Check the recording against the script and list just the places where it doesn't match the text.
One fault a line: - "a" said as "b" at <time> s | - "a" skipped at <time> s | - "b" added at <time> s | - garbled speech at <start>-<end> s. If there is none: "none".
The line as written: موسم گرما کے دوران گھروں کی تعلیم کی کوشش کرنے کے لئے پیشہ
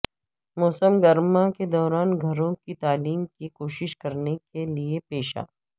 none